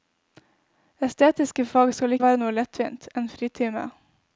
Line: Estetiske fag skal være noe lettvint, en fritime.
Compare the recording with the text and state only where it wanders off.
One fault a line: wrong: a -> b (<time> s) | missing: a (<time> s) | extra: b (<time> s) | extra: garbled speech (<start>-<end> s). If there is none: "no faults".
no faults